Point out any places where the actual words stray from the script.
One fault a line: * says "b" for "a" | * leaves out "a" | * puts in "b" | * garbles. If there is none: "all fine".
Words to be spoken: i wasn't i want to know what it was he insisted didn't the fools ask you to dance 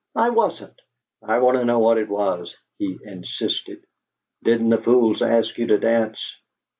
all fine